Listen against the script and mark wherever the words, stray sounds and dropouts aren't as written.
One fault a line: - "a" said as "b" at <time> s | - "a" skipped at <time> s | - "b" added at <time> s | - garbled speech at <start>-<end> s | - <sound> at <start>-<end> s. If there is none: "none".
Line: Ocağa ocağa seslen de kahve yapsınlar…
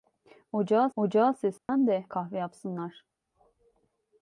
- dropout at 1.6-1.7 s